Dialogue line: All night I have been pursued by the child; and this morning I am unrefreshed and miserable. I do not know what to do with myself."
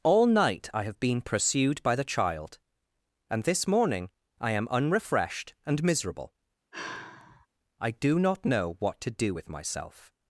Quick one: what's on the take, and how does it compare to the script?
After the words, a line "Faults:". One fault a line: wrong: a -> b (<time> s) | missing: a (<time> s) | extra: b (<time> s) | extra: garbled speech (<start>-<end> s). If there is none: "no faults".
All night I have been pursued by the child; and this morning I am unrefreshed and miserable. I do not know what to do with myself."
Faults:
no faults